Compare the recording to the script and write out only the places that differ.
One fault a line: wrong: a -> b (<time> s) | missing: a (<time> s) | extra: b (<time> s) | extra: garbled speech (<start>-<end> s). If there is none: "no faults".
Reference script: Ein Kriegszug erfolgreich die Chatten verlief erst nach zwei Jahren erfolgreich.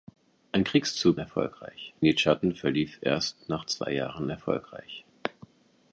no faults